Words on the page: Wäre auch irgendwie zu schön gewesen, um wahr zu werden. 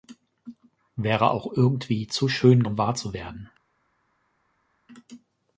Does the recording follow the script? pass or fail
fail